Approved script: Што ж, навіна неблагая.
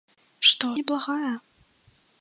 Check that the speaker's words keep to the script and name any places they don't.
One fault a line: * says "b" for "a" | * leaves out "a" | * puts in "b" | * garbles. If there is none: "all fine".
* leaves out "ж навіна"